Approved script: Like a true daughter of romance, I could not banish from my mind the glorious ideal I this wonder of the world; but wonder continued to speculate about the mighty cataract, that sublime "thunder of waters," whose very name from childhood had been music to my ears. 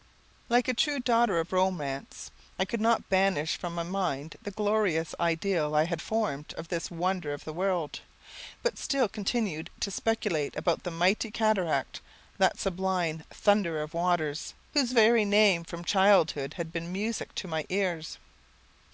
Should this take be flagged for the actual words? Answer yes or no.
yes